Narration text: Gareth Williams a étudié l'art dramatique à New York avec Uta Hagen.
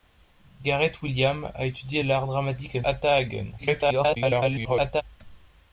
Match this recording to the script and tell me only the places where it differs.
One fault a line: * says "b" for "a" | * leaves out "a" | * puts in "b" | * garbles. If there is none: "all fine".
* leaves out "New York avec"
* garbles